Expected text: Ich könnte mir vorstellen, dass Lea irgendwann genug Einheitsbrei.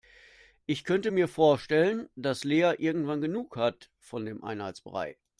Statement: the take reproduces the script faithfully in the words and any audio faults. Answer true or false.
false